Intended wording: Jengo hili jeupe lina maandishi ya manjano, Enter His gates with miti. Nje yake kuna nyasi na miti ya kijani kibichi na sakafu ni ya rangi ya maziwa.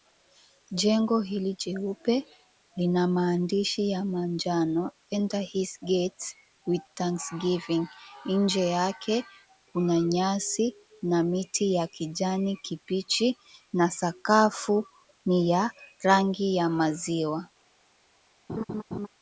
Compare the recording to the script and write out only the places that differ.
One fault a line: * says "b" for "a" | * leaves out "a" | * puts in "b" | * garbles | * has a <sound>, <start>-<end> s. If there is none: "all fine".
* says "thanksgiving" for "miti"
* has a laugh, 18.5-19.1 s